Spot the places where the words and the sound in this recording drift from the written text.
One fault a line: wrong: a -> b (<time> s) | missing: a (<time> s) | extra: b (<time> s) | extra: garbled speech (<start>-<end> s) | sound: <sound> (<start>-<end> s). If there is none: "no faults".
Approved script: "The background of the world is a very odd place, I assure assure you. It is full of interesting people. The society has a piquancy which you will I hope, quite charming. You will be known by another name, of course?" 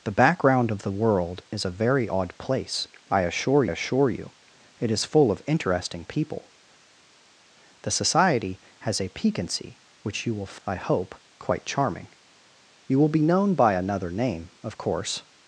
no faults